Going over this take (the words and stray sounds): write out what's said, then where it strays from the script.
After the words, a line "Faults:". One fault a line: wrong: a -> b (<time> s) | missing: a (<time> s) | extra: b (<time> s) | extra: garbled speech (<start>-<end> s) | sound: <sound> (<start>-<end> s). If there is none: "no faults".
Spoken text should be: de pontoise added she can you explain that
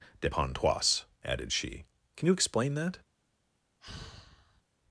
de pontoise added she can you explain that
Faults:
sound: sigh (3.8-4.6 s)